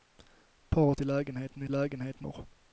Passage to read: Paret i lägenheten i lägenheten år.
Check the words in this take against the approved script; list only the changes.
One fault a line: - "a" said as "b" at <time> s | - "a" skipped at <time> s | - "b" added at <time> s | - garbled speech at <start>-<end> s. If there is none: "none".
none